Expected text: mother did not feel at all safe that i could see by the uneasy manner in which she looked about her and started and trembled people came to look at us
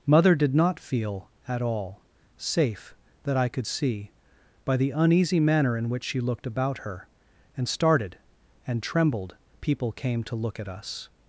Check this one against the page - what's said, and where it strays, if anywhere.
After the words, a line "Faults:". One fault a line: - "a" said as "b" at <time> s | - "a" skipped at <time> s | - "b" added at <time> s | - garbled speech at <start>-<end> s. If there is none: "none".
mother did not feel at all safe that i could see by the uneasy manner in which she looked about her and started and trembled people came to look at us
Faults:
none